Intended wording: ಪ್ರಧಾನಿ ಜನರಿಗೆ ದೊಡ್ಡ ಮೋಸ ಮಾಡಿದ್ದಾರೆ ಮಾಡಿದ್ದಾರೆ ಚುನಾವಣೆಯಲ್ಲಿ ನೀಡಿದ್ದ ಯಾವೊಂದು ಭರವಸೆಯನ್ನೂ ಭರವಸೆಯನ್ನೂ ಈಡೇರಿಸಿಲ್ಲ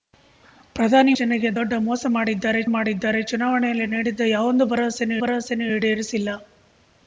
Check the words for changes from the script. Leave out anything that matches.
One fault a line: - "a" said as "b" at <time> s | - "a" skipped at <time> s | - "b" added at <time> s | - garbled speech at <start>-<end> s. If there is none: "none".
none